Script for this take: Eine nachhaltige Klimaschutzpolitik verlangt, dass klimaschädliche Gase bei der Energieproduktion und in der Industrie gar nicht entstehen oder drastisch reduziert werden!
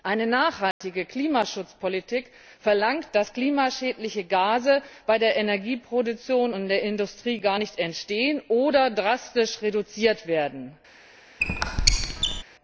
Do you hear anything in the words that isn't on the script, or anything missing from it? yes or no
no